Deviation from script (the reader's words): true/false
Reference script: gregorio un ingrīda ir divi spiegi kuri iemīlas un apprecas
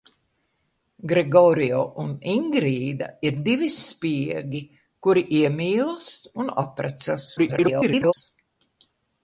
true